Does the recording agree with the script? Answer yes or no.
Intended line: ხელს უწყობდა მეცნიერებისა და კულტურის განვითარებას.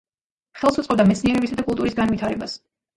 yes